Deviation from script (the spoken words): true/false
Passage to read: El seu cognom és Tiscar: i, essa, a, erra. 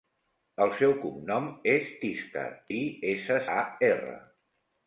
false